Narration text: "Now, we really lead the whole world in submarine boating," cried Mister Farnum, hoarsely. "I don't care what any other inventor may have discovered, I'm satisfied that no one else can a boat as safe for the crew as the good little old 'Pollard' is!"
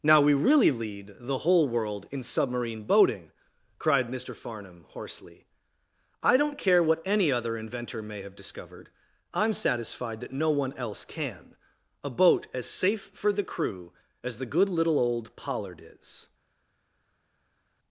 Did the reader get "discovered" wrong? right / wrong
right